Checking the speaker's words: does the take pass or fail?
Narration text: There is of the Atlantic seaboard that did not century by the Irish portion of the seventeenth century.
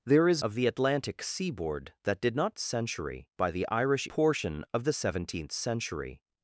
pass